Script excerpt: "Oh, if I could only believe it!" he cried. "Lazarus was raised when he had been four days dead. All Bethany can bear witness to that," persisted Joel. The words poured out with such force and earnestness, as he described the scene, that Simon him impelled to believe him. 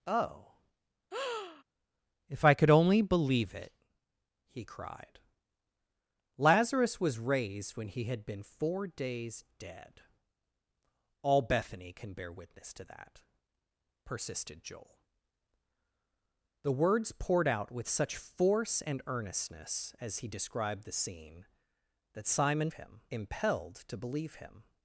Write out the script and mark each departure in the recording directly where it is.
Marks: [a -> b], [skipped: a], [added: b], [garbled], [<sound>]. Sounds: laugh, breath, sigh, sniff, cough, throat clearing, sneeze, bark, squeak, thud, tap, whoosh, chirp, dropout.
"Oh, [breath] if I could only believe it!" he cried. "Lazarus was raised when he had been four days dead. All Bethany can bear witness to that," persisted Joel. The words poured out with such force and earnestness, as he described the scene, that Simon him impelled to believe him.